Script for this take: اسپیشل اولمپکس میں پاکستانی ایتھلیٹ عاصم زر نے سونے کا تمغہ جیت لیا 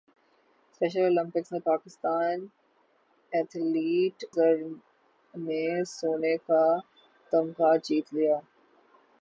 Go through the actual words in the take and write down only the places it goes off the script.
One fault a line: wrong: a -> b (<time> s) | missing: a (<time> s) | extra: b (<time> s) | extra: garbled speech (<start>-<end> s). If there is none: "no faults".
missing: عاصم (4.2 s)